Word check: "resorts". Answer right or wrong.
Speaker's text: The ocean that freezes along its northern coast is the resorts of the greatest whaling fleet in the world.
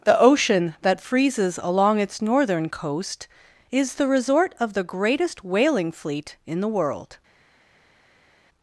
wrong